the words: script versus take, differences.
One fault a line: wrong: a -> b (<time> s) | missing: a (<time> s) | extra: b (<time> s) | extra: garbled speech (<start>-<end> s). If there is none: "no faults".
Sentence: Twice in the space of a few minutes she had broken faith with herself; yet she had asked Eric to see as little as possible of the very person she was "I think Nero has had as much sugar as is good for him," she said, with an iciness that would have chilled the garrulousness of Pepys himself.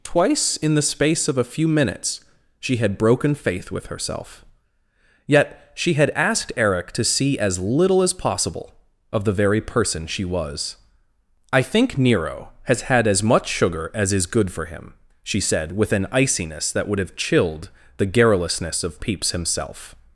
no faults